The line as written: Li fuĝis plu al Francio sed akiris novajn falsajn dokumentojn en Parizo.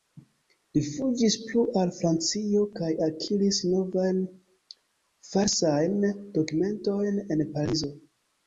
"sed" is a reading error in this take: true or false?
true